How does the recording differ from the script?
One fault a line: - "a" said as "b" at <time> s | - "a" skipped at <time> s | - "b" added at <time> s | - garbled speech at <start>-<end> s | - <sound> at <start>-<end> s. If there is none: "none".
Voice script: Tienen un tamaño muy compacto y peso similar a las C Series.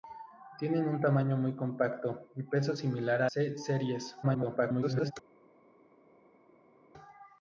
- "las" skipped at 3.3 s
- garbled speech at 4.2-5.1 s